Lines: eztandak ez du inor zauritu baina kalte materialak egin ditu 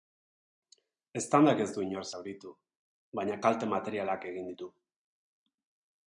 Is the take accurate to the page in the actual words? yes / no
yes